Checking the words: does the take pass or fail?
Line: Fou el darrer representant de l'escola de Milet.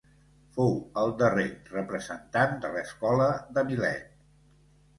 pass